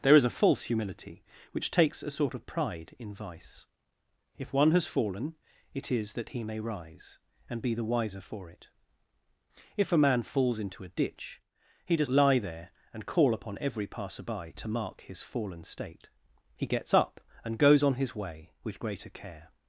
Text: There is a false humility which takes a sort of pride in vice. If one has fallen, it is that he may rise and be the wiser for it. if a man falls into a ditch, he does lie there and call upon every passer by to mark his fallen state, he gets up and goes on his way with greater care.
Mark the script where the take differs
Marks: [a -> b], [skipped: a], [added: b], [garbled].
There is a false humility which takes a sort of pride in vice. If one has fallen, it is that he may rise and be the wiser for it. if a man falls into a ditch, he does lie there and call upon every passer by to mark his fallen state, he gets up and goes on his way with greater care.